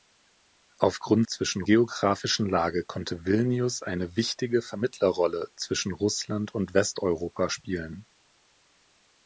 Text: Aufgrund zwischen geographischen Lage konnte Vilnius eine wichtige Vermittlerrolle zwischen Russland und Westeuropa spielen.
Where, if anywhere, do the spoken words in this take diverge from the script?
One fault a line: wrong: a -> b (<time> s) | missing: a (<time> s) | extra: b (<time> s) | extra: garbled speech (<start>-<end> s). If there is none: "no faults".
no faults